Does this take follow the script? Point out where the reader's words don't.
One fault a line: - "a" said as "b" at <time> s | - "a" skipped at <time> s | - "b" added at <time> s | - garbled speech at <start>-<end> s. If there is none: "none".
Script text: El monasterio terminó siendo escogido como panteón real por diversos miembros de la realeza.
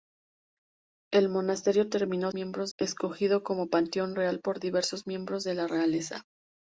- "siendo" said as "miembros" at 2.3 s